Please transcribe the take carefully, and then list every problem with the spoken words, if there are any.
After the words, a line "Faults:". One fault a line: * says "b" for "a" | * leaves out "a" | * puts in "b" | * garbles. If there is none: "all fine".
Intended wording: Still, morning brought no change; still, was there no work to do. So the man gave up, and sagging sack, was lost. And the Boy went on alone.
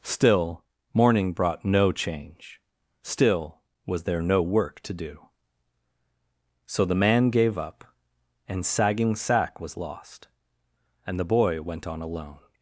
Still, morning brought no change; still, was there no work to do. So the man gave up, and sagging sack, was lost. And the Boy went on alone.
Faults:
all fine